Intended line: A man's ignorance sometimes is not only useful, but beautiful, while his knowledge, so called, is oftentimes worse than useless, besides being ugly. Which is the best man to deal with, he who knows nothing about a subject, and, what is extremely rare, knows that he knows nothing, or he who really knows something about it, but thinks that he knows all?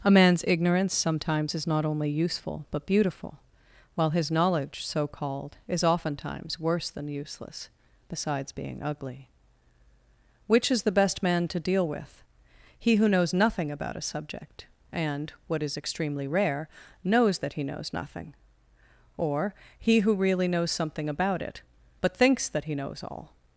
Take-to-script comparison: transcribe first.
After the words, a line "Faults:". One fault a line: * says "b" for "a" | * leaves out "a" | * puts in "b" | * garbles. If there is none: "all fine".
A man's ignorance sometimes is not only useful, but beautiful, while his knowledge, so called, is oftentimes worse than useless, besides being ugly. Which is the best man to deal with, he who knows nothing about a subject, and, what is extremely rare, knows that he knows nothing, or he who really knows something about it, but thinks that he knows all?
Faults:
all fine